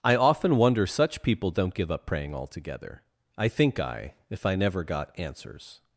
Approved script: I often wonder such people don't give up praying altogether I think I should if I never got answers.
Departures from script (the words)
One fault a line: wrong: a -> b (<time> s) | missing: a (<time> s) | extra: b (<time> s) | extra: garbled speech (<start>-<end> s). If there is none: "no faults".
missing: should (4.1 s)